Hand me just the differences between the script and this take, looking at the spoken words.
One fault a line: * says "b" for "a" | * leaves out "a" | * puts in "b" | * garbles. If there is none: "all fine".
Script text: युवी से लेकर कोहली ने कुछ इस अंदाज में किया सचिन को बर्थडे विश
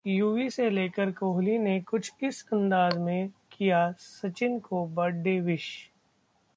all fine